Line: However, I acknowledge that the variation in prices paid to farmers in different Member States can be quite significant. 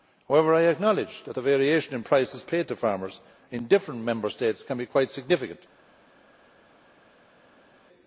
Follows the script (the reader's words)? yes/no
yes